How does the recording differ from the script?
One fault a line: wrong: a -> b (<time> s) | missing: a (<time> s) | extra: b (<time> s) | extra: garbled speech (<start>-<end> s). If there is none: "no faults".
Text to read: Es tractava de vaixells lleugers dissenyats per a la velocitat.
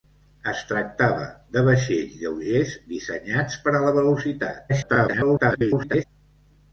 extra: garbled speech (4.7-6.0 s)